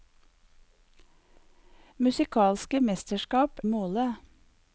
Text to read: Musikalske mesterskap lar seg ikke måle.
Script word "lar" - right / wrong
wrong